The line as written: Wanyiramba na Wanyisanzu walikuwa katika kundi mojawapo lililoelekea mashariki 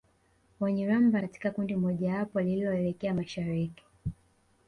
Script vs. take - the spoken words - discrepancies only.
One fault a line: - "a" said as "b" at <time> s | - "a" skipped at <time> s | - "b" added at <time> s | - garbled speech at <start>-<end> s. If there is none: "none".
- "na Wanyisanzu walikuwa" skipped at 1.2 s